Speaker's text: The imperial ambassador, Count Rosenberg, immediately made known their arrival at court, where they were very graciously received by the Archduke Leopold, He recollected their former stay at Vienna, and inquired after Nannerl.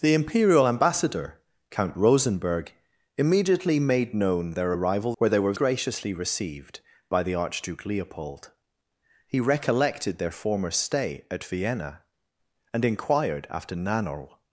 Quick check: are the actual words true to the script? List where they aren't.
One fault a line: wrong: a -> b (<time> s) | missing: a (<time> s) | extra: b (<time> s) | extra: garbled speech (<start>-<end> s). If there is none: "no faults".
missing: at court (5.2 s)
missing: very (5.5 s)